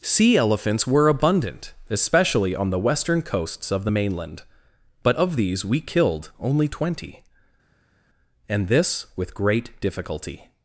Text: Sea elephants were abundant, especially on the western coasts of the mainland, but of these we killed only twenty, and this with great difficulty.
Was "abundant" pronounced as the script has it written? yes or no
yes